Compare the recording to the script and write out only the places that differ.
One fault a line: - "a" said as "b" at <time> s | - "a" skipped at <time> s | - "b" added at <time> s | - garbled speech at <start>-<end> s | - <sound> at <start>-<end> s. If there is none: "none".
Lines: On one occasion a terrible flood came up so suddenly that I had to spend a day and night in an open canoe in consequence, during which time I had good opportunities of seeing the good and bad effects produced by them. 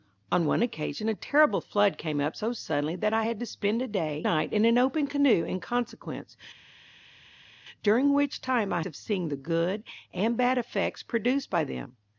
- "and" skipped at 4.2 s
- "had good opportunities" skipped at 8.8 s